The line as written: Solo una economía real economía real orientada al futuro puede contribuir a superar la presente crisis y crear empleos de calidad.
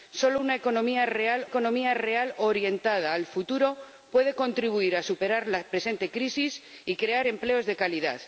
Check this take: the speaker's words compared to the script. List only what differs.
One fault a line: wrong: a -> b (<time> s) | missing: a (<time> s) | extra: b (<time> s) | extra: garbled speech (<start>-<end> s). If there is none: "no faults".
no faults